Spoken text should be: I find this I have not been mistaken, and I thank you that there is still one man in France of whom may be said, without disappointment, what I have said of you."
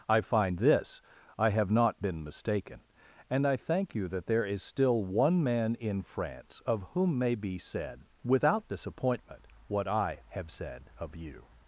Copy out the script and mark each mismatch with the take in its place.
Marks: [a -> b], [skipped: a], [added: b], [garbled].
I find this I have not been mistaken, and I thank you that there is still one man in France of whom may be said, without disappointment, what I have said of you."